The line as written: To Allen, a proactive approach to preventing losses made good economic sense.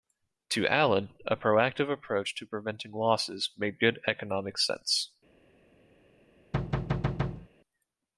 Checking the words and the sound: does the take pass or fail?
fail